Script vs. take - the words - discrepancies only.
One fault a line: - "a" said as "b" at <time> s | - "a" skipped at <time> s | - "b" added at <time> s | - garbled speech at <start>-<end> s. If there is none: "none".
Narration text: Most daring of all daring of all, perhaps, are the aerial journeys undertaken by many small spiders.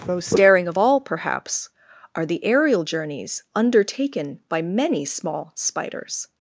- "daring of all" skipped at 1.0 s